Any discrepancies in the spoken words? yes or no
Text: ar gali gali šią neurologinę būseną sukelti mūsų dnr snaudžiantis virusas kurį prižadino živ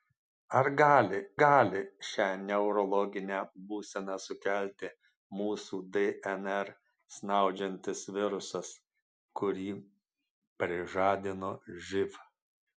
no